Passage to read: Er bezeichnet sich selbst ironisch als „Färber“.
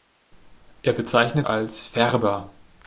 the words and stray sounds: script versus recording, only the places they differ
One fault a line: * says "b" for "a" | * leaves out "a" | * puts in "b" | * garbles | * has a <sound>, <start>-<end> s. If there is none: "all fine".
* leaves out "sich selbst ironisch"